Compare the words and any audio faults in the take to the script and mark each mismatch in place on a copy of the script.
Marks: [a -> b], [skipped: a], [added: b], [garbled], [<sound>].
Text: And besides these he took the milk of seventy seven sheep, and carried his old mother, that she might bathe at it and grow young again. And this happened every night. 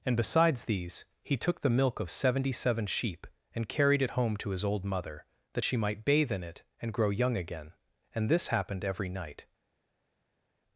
And besides these he took the milk of seventy seven sheep, and carried [added: it home to] his old mother, that she might bathe [at -> in] it and grow young again. And this happened every night.